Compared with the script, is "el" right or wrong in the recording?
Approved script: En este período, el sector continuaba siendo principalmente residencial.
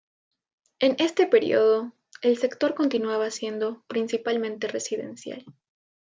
right